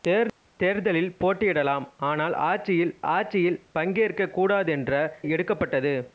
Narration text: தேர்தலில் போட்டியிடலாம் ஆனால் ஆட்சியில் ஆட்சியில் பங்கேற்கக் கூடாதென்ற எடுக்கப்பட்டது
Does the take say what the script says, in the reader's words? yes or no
yes